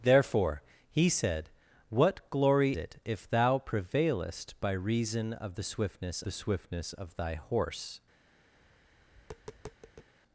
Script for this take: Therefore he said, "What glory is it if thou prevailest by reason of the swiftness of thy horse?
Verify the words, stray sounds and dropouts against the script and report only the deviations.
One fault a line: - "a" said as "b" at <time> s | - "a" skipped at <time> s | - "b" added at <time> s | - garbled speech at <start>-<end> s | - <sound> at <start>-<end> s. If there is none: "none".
- "is" skipped at 2.7 s
- "the swiftness" added at 6.2 s
- tap at 8.6-10.1 s